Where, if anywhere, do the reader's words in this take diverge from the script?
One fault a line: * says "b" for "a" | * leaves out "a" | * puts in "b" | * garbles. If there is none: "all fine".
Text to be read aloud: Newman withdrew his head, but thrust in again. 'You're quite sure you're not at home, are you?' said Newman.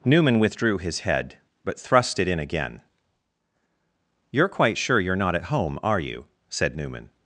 * puts in "it"